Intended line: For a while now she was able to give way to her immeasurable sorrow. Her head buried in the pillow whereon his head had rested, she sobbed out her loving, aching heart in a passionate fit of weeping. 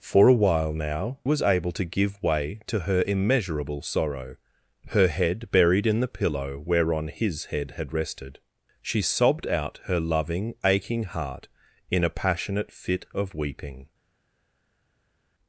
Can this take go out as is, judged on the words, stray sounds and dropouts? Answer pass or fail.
fail